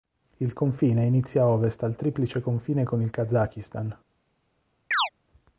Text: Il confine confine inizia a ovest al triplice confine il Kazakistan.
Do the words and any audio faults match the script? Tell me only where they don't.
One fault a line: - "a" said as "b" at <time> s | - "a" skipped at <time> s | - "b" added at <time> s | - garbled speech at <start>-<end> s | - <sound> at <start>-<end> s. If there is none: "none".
- "confine" skipped at 1.1 s
- "con" added at 2.8 s
- chirp at 4.9-5.1 s